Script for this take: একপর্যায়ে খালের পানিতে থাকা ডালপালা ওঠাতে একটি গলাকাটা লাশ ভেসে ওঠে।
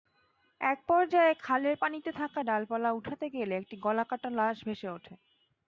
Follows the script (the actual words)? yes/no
no